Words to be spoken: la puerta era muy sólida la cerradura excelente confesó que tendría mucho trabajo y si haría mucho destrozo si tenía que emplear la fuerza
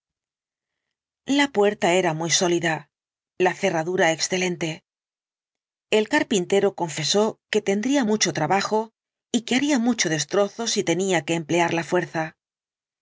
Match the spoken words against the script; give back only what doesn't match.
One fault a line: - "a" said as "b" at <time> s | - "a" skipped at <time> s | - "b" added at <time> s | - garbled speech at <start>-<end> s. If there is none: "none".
- "el carpintero" added at 5.9 s
- "si" said as "que" at 9.4 s